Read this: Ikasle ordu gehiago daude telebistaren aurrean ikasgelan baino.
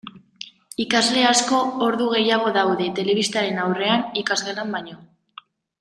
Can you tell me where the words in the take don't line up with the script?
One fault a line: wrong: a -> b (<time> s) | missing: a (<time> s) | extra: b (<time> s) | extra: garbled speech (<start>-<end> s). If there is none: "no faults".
extra: asko (1.3 s)